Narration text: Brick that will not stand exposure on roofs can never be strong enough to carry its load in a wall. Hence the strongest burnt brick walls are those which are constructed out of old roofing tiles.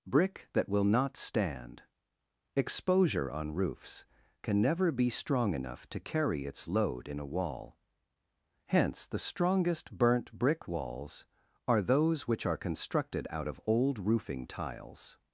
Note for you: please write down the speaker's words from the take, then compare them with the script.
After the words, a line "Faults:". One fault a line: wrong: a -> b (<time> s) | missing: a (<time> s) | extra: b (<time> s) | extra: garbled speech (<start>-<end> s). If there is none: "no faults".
Brick that will not stand exposure on roofs can never be strong enough to carry its load in a wall. Hence the strongest burnt brick walls are those which are constructed out of old roofing tiles.
Faults:
no faults